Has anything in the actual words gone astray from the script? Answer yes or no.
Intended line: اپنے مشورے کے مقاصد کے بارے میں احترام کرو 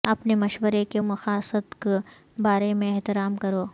no